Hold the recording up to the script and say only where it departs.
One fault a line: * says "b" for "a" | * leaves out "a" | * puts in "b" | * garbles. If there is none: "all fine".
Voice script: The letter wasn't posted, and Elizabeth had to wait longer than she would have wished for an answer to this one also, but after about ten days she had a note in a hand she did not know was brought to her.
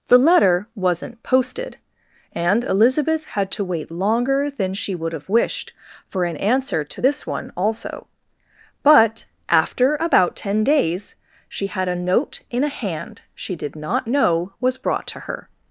all fine